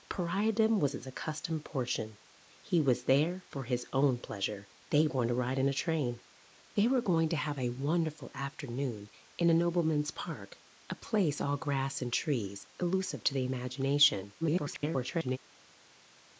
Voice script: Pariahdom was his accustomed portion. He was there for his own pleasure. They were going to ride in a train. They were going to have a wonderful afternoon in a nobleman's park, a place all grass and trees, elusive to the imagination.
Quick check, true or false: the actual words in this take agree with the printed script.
false